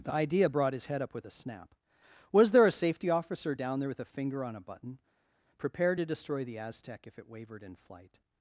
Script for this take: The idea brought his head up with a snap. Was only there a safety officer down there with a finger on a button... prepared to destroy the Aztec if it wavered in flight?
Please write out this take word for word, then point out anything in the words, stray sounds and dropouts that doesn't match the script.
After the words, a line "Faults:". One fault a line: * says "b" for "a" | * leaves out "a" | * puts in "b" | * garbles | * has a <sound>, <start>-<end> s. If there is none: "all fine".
The idea brought his head up with a snap. Was there a safety officer down there with a finger on a button... prepared to destroy the Aztec if it wavered in flight?
Faults:
* leaves out "only"